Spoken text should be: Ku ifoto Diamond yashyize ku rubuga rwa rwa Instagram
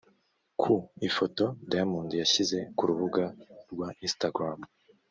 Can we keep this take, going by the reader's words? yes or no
no